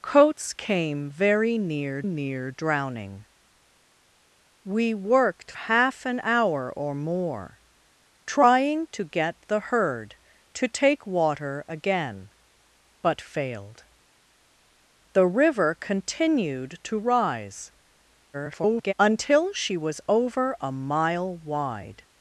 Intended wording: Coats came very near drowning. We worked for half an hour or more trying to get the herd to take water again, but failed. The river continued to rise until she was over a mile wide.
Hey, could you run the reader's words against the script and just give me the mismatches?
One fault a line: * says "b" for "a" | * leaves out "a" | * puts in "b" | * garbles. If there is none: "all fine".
* puts in "near"
* leaves out "for"
* garbles